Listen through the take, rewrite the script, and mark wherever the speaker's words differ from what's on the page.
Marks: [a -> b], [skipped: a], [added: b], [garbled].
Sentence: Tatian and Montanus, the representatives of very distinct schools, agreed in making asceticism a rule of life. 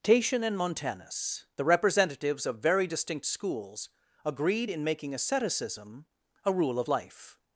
Tatian and Montanus, the representatives of very distinct schools, agreed in making asceticism a rule of life.